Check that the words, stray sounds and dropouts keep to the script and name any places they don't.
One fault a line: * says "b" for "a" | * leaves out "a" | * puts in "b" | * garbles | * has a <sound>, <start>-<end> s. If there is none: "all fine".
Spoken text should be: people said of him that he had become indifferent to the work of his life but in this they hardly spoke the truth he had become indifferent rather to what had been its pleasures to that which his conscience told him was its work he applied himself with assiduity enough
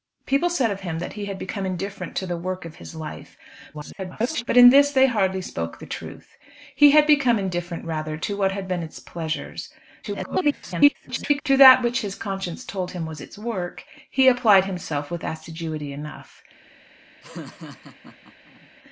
* garbles
* garbles
* has a laugh, 17.2-18.7 s